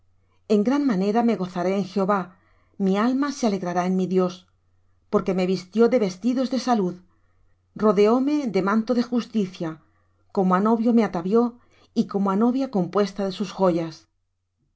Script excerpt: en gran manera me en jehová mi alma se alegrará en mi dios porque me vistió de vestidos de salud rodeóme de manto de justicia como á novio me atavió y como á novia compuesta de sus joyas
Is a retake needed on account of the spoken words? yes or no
yes